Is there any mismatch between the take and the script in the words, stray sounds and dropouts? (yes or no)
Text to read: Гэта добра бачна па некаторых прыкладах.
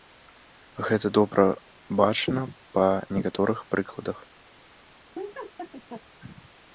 yes